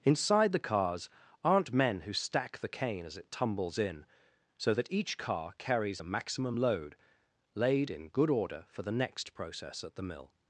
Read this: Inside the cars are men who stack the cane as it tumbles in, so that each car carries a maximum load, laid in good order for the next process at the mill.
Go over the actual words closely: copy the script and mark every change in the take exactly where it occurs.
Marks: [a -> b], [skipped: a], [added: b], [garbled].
Inside the cars [are -> aren't] men who stack the cane as it tumbles in, so that each car carries a maximum load, laid in good order for the next process at the mill.